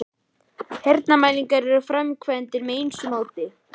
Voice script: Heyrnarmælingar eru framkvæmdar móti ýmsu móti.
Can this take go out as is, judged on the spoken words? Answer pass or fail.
fail